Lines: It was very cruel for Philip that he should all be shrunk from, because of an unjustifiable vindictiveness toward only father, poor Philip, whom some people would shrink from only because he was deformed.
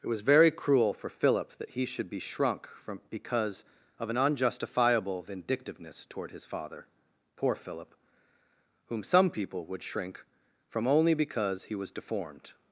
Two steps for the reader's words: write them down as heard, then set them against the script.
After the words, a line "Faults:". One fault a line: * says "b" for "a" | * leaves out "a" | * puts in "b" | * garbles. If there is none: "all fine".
It was very cruel for Philip that he should be shrunk from, because of an unjustifiable vindictiveness toward his father, poor Philip, whom some people would shrink from only because he was deformed.
Faults:
* leaves out "all"
* says "his" for "only"